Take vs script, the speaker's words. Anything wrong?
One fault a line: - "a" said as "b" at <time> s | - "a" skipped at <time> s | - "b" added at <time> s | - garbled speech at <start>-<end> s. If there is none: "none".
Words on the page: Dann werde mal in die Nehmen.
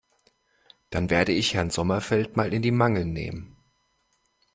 - "ich Herrn Sommerfeld" added at 1.3 s
- "Mangel" added at 2.7 s